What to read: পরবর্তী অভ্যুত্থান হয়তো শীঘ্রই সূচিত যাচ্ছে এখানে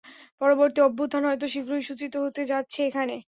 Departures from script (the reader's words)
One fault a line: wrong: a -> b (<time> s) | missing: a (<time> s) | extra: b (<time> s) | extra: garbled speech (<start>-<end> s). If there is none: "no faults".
extra: হতে (2.2 s)